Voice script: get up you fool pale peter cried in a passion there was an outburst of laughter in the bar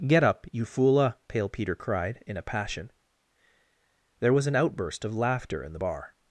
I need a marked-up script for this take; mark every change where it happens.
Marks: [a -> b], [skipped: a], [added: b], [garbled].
get up you fool pale peter cried in a passion there was an outburst of laughter in the bar